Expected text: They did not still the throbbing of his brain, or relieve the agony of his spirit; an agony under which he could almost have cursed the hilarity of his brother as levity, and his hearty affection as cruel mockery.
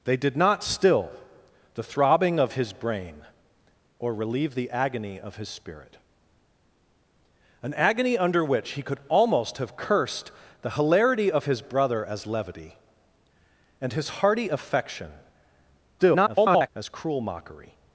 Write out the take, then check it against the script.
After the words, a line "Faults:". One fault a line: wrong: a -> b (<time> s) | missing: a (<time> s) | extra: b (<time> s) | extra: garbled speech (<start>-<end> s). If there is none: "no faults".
They did not still the throbbing of his brain, or relieve the agony of his spirit; an agony under which he could almost have cursed the hilarity of his brother as levity, and his hearty affection [garbled] as cruel mockery.
Faults:
extra: garbled speech (16.0-16.7 s)